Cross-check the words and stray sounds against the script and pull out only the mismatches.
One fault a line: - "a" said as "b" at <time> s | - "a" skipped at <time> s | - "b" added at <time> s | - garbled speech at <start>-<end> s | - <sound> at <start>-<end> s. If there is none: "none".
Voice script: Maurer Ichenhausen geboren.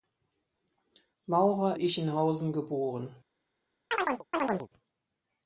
- chirp at 3.9-4.7 s